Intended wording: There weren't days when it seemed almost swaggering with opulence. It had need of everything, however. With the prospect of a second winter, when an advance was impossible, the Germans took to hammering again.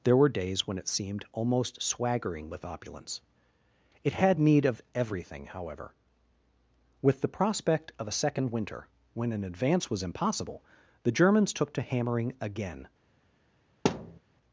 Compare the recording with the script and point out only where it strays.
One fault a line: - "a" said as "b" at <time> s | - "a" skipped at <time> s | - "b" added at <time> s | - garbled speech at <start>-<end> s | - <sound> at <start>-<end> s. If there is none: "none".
- "weren't" said as "were" at 0.2 s
- thud at 13.8-14.2 s